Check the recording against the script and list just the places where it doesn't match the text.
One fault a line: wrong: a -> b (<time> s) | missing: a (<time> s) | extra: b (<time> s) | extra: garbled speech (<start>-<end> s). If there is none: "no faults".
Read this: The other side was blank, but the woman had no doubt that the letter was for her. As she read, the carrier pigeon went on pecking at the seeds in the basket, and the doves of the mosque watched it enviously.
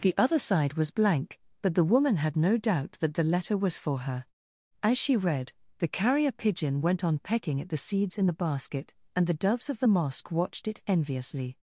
no faults